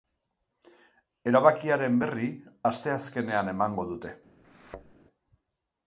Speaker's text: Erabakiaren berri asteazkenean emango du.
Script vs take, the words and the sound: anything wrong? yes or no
yes